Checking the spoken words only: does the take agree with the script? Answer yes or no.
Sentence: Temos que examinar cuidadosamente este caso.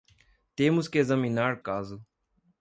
no